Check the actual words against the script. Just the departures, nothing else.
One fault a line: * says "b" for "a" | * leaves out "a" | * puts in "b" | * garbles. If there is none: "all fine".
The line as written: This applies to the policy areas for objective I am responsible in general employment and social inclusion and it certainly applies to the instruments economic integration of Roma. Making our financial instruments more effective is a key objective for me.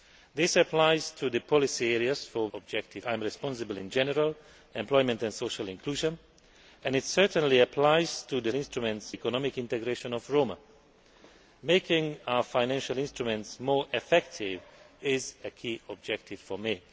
all fine